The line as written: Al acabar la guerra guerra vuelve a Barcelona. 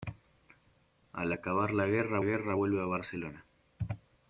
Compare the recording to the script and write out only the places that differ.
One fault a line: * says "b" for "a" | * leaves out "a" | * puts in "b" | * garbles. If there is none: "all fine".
all fine